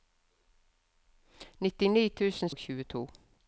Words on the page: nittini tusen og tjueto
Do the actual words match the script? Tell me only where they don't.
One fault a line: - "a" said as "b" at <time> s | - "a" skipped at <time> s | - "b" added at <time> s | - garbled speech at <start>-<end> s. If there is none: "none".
none